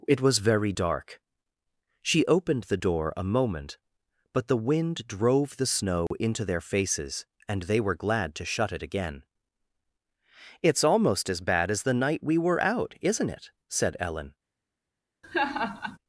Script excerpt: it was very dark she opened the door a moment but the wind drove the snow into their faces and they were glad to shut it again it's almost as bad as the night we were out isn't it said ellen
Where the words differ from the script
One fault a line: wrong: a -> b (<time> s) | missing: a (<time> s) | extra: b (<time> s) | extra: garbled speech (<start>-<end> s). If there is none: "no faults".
no faults